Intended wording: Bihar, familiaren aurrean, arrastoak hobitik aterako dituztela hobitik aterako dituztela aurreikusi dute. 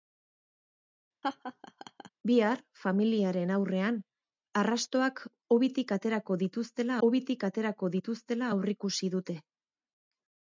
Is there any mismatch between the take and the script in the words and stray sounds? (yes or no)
yes